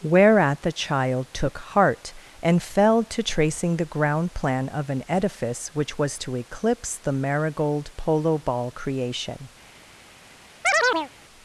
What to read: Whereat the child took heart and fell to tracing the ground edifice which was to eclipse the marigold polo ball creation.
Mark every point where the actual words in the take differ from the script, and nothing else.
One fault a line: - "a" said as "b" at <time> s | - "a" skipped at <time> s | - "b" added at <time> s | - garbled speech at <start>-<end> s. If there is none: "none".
- "plan of an" added at 4.3 s